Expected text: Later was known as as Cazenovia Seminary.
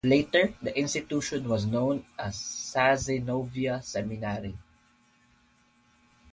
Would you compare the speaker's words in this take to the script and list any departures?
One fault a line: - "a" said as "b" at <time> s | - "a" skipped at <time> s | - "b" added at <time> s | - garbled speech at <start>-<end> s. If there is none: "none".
- "the institution" added at 0.6 s
- "as" skipped at 2.4 s